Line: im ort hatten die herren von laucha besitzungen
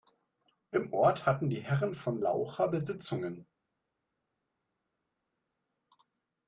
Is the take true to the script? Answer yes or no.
yes